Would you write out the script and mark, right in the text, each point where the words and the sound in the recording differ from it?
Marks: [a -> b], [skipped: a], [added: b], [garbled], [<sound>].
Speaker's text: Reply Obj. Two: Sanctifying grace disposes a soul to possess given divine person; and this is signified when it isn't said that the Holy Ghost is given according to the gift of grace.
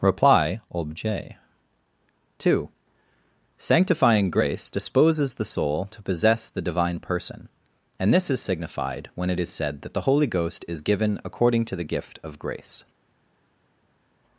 Reply Obj. Two: Sanctifying grace disposes [a -> the] soul to possess [given -> the] divine person; and this is signified when it [isn't -> is] said that the Holy Ghost is given according to the gift of grace.